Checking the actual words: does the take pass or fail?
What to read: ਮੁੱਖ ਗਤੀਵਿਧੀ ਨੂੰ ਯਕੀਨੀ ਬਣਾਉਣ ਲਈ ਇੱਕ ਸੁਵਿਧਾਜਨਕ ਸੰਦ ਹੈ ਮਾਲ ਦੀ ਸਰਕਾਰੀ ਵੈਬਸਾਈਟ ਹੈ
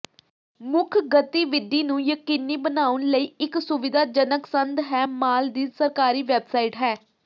pass